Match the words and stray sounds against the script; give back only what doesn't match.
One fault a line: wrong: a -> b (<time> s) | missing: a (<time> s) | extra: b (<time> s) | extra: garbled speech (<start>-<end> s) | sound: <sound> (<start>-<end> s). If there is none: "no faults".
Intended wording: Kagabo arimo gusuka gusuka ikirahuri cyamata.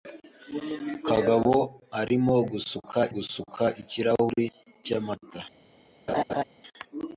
sound: laugh (6.1-6.4 s)